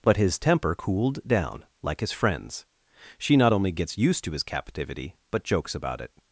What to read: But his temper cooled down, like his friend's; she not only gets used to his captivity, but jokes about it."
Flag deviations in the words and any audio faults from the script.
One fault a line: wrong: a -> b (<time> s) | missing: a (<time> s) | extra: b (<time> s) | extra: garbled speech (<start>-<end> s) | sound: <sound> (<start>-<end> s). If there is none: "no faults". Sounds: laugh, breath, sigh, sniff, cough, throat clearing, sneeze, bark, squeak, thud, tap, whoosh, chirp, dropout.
no faults